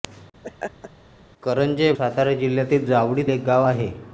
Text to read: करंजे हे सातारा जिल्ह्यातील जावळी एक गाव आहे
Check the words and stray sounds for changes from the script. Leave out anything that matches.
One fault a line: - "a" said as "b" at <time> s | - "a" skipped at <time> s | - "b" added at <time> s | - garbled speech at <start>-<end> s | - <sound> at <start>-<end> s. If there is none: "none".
- laugh at 0.4-0.9 s